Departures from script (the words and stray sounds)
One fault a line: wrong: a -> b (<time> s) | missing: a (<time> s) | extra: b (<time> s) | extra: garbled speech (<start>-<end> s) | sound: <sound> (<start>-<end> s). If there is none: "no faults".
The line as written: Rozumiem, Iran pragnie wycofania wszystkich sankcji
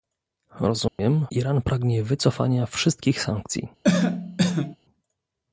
sound: dropout (0.9-1.0 s)
sound: cough (3.8-4.8 s)